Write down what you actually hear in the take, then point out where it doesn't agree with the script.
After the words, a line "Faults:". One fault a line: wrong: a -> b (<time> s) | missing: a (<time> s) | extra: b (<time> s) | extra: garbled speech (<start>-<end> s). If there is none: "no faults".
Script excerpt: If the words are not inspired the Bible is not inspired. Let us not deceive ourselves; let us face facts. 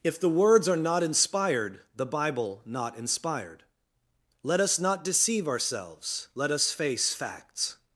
If the words are not inspired the Bible not inspired. Let us not deceive ourselves; let us face facts.
Faults:
missing: is (2.6 s)